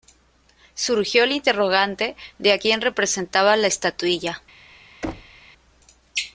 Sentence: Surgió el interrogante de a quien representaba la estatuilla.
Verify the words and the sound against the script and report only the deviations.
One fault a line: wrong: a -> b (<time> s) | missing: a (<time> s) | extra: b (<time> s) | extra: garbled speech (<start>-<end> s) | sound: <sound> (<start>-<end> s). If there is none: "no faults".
sound: thud (5.0-5.4 s)